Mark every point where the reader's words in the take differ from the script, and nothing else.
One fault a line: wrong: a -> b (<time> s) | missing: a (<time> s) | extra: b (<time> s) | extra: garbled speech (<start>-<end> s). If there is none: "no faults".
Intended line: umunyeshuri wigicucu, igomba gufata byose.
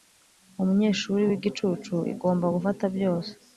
no faults